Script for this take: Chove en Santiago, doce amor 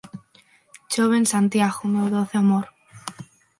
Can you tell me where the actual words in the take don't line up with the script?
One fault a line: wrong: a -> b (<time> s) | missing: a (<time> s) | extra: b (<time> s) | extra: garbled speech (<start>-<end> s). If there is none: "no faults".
extra: meu (1.9 s)